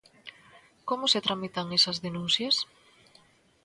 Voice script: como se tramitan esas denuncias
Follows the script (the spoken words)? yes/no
yes